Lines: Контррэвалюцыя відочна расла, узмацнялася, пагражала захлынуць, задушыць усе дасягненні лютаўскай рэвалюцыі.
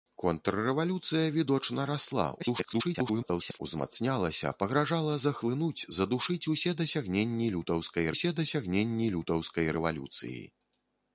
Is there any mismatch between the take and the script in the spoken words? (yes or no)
yes